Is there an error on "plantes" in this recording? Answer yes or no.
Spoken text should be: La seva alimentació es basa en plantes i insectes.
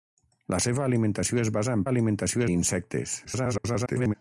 yes